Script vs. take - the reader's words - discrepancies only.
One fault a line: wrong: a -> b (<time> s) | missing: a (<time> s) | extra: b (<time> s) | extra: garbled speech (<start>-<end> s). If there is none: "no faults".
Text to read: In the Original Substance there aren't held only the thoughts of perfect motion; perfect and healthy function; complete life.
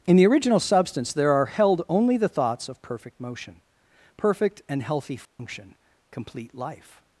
wrong: aren't -> are (1.3 s)